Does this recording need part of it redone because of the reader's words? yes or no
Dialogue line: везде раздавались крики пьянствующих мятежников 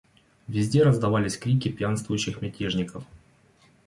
no